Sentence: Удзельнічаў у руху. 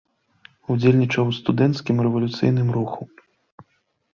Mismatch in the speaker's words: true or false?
true